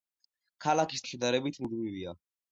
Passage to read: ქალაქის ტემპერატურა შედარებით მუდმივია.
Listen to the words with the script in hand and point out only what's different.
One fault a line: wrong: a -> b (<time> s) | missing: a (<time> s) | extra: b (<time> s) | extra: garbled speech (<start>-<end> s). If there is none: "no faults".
missing: ტემპერატურა (1.1 s)